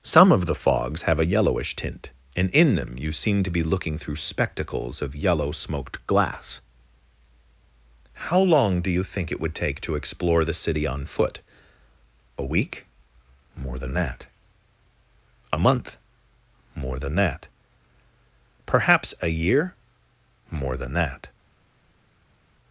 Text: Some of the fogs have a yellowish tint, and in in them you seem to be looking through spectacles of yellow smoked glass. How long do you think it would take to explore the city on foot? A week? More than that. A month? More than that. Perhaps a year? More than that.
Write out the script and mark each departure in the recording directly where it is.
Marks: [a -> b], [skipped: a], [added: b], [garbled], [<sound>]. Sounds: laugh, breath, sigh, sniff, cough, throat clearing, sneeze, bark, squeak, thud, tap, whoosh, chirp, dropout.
Some of the fogs have a yellowish tint, and in [skipped: in] them you seem to be looking through spectacles of yellow smoked glass. How long do you think it would take to explore the city on foot? A week? More than that. A month? More than that. Perhaps a year? More than that.